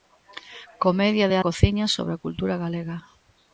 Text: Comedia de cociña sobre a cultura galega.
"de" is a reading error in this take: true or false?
false